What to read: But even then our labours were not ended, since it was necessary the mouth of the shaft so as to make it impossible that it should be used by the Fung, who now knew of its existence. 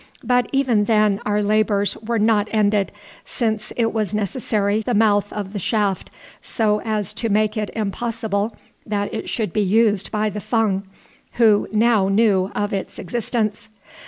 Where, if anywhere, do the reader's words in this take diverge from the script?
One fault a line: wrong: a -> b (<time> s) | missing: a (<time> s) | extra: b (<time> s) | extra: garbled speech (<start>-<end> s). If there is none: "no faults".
no faults